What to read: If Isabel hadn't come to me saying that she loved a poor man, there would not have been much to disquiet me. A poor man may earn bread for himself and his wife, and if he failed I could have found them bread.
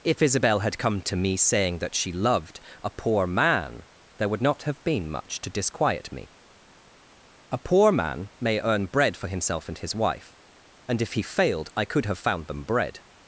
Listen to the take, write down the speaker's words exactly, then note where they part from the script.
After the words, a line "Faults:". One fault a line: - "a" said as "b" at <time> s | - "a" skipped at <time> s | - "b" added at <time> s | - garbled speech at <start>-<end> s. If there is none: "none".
If Isabel had come to me saying that she loved a poor man, there would not have been much to disquiet me. A poor man may earn bread for himself and his wife, and if he failed I could have found them bread.
Faults:
- "hadn't" said as "had" at 0.6 s